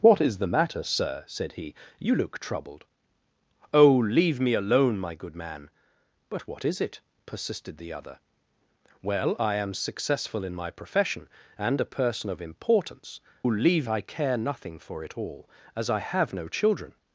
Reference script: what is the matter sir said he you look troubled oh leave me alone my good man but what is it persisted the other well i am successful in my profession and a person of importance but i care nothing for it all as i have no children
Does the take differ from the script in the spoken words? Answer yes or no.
yes